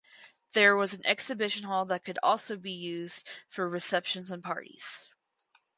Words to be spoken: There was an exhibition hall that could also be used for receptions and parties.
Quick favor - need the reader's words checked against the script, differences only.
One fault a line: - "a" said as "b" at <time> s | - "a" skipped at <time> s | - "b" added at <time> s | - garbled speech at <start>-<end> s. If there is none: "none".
none